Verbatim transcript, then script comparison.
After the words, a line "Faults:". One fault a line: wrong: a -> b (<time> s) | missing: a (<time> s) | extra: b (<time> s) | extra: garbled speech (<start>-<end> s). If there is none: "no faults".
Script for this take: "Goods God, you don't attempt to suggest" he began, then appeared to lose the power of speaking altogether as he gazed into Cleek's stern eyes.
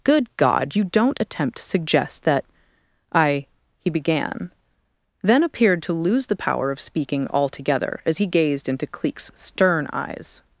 "Good God, you don't attempt to suggest that I" he began, then appeared to lose the power of speaking altogether as he gazed into Cleek's stern eyes.
Faults:
wrong: Goods -> Good (0.0 s)
extra: that I (2.2 s)